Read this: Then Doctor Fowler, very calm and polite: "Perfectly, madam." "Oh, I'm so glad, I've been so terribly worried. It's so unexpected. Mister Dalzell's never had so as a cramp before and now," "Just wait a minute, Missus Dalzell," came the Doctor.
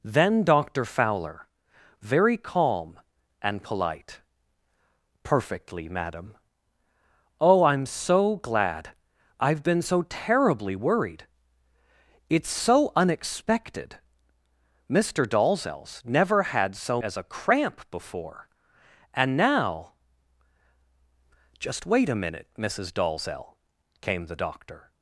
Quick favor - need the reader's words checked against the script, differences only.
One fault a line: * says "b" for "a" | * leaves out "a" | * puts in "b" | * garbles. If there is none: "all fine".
all fine